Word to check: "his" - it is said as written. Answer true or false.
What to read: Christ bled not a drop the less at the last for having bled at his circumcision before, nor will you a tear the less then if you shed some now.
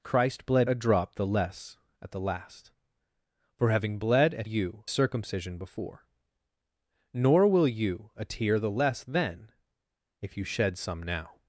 false